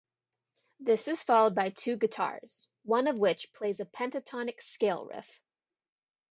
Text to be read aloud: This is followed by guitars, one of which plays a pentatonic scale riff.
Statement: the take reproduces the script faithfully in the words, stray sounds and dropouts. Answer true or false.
false